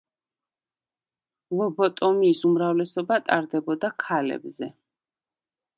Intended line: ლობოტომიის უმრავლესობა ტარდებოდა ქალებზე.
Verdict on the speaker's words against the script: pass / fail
pass